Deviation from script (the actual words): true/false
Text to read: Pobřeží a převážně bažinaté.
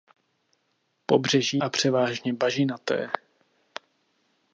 false